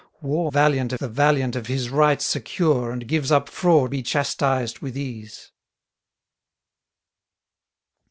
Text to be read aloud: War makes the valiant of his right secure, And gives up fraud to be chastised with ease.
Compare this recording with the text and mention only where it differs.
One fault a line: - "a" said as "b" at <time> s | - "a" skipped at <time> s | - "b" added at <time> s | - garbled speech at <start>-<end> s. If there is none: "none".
- "makes" said as "valiant" at 0.5 s
- "to" skipped at 3.9 s